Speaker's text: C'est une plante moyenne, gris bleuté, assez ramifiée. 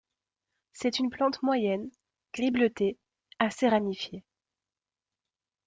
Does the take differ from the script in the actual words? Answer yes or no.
no